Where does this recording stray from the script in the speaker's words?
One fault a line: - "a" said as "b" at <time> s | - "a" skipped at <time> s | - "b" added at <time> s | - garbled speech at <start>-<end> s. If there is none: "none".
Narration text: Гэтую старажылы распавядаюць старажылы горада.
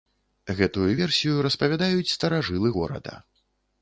- "старажылы" said as "версію" at 1.0 s